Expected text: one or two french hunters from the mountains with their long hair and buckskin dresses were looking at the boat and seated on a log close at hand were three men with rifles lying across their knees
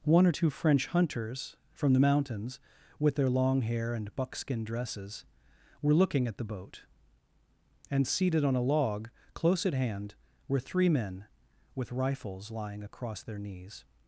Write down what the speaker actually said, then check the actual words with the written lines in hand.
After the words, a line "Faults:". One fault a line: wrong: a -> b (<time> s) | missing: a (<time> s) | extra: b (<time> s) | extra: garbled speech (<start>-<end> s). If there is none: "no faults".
one or two french hunters from the mountains with their long hair and buckskin dresses were looking at the boat and seated on a log close at hand were three men with rifles lying across their knees
Faults:
no faults